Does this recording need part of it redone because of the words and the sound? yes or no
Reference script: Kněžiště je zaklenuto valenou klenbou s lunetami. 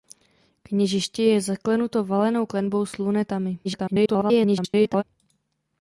yes